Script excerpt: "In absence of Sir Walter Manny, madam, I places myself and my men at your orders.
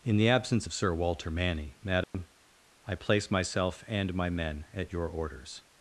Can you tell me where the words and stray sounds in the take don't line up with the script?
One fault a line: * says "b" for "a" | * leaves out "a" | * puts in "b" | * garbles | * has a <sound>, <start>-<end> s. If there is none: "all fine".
* puts in "the"
* has a dropout, 2.0-2.1 s
* says "place" for "places"